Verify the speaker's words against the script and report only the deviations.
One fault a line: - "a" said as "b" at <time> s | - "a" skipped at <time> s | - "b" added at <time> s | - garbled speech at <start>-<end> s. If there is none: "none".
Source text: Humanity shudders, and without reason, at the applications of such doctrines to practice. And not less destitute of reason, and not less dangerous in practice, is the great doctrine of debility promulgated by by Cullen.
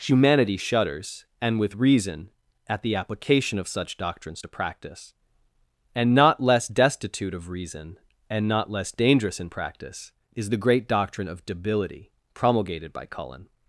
- "without" said as "with" at 1.6 s
- "applications" said as "application" at 2.9 s
- "by" skipped at 13.0 s